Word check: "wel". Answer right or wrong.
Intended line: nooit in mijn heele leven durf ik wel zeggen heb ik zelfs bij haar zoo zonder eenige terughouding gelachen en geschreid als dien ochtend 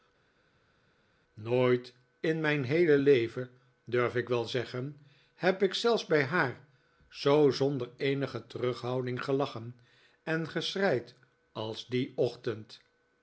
right